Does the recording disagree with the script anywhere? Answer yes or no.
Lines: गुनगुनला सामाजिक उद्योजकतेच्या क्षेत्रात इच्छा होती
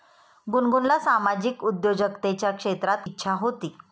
no